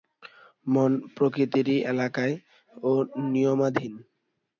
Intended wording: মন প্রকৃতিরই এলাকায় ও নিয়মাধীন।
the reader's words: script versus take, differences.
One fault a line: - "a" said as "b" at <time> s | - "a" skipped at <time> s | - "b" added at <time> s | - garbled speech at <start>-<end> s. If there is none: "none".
none